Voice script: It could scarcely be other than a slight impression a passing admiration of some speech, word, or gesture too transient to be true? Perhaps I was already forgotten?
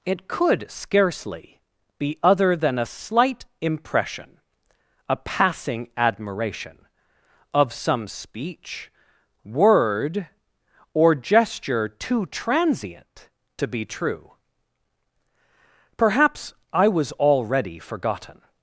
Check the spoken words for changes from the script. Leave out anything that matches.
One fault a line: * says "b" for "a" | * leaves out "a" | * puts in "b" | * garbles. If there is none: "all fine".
all fine